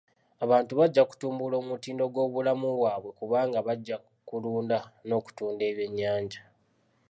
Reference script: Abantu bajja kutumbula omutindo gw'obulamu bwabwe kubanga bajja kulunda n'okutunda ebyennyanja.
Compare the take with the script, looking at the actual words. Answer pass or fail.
pass